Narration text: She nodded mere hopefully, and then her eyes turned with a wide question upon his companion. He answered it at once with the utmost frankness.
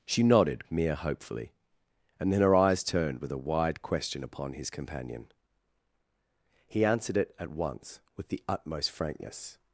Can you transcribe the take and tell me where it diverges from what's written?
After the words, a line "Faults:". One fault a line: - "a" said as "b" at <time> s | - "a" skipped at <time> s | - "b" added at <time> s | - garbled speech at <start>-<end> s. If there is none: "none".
She nodded mere hopefully, and then her eyes turned with a wide question upon his companion. He answered it at once with the utmost frankness.
Faults:
none